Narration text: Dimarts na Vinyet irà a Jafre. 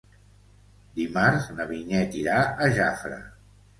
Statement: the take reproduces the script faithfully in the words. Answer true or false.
true